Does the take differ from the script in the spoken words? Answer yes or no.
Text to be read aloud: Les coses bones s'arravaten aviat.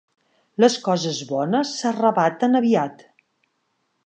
no